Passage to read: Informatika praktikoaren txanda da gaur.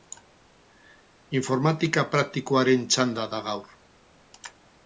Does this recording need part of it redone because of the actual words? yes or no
no